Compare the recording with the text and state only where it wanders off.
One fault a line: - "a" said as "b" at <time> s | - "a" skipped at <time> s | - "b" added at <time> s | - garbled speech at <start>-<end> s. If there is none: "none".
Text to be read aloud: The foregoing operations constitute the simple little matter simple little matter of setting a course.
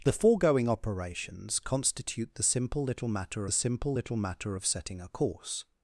none